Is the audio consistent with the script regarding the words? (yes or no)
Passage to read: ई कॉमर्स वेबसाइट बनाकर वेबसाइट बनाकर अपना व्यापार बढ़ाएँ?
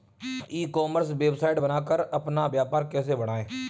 no